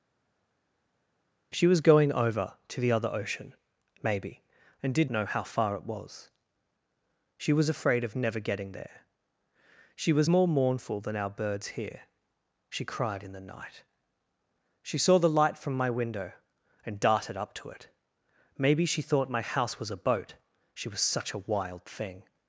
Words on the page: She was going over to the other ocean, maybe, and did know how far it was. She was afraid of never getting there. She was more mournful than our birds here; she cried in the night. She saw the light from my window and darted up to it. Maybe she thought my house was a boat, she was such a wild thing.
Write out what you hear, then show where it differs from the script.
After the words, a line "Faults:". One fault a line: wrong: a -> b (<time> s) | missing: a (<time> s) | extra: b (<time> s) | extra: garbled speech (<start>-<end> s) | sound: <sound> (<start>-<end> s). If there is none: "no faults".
She was going over to the other ocean, maybe, and did know how far it was. She was afraid of never getting there. She was more mournful than our birds here; she cried in the night. She saw the light from my window and darted up to it. Maybe she thought my house was a boat, she was such a wild thing.
Faults:
no faults